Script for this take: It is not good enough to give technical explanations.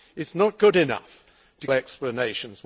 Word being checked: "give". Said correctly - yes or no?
no